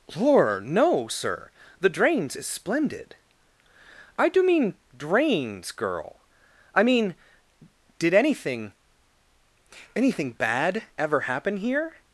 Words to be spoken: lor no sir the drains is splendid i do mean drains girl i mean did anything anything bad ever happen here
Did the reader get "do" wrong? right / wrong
right